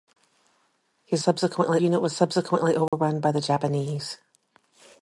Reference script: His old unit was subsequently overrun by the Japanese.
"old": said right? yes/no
no